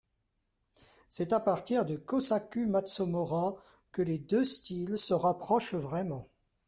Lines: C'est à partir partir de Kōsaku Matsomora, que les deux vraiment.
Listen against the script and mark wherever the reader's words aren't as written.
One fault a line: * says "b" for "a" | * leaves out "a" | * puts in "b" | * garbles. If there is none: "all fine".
* leaves out "partir"
* puts in "styles se rapprochent"